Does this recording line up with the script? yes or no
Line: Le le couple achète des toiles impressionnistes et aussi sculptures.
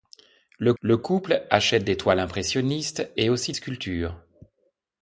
yes